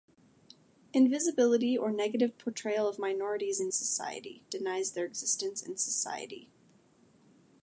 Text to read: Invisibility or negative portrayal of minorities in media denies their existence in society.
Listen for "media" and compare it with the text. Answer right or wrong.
wrong